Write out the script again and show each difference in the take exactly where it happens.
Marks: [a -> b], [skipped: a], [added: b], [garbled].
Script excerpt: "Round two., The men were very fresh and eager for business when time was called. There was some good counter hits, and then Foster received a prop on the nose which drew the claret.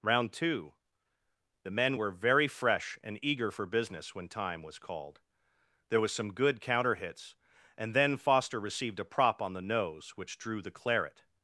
"Round two., The men were very fresh and eager for business when time was called. There was some good counter hits, and then Foster received a prop on the nose which drew the claret.